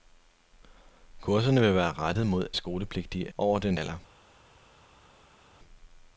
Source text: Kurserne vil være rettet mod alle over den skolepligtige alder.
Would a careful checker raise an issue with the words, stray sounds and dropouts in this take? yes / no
yes